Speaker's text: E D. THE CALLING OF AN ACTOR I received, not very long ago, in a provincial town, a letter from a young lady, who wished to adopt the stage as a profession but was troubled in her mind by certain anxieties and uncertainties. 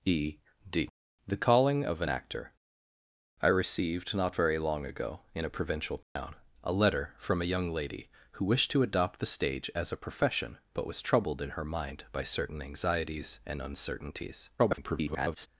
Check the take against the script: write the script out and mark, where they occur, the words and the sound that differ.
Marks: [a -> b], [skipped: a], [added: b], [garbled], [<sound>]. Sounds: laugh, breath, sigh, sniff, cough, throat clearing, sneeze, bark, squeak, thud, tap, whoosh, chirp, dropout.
E D. THE CALLING OF AN ACTOR I received, not very long ago, in a provincial town, [dropout] a letter from a young lady, who wished to adopt the stage as a profession but was troubled in her mind by certain anxieties and uncertainties. [garbled]